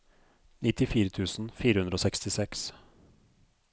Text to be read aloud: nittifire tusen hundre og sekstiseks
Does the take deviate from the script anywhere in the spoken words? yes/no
yes